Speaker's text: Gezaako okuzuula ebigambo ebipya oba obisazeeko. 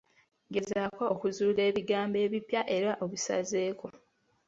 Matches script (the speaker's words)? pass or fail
fail